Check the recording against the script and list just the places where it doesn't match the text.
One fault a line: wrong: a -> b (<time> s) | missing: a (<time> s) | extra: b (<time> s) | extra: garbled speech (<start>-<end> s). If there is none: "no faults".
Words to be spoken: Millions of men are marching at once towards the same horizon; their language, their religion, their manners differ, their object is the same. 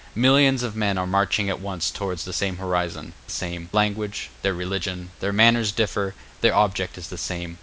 wrong: their -> same (3.3 s)